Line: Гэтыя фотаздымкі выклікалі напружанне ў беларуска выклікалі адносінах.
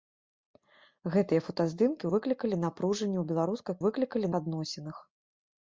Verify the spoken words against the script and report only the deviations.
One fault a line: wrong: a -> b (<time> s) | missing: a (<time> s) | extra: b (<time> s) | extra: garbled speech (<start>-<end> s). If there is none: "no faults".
no faults